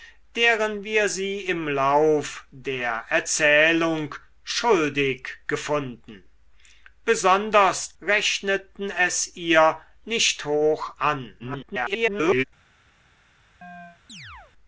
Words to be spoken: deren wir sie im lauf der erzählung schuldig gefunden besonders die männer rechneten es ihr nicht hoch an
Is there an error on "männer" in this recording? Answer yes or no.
yes